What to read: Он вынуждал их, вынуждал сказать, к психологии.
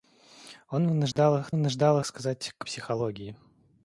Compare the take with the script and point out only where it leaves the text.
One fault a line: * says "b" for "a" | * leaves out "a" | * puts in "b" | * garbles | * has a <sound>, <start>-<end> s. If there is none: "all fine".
* has a dropout, 1.1-1.2 s